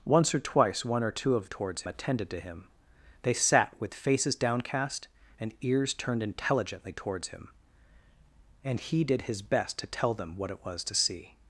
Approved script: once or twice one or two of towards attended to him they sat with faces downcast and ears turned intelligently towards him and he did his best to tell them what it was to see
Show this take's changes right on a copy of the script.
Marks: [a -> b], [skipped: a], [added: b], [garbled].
once or twice one or two of towards attended to him they sat with faces downcast and ears turned intelligently towards him and he did his best to tell them what it was to see